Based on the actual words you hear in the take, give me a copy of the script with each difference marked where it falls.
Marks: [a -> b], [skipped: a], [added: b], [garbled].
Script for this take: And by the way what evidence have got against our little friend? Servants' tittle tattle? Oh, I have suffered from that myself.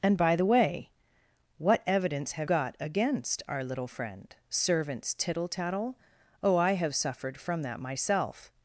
And by the way what evidence have got against our little friend? Servants' tittle tattle? Oh, I have suffered from that myself.